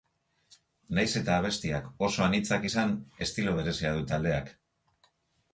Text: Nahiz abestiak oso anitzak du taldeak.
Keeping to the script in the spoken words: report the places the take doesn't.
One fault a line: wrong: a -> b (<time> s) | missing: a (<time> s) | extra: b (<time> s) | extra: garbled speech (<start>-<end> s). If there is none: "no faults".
extra: eta (1.2 s)
extra: izan estilo berezia (2.7 s)